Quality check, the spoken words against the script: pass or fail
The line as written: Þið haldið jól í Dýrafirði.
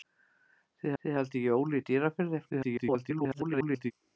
fail